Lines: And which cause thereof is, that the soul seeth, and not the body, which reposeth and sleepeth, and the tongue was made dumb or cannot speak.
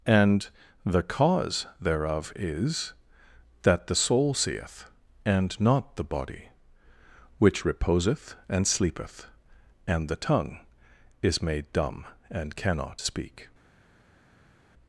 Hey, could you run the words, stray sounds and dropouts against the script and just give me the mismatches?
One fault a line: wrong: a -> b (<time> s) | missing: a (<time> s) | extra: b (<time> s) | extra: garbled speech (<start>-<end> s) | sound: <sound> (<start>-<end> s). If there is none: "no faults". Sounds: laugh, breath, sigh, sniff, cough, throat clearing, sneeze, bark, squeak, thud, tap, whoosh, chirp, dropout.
wrong: which -> the (0.8 s)
wrong: was -> is (11.2 s)
wrong: or -> and (12.3 s)